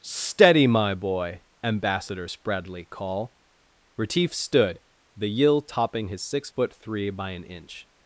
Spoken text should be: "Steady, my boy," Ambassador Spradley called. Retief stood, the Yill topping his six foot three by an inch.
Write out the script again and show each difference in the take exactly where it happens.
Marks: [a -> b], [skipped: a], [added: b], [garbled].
"Steady, my boy," Ambassador Spradley [called. -> call] Retief stood, the Yill topping his six foot three by an inch.